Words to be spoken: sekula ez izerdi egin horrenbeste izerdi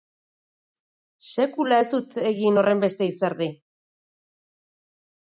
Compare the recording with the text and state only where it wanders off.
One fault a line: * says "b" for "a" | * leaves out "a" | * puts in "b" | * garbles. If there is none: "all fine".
* says "dut" for "izerdi"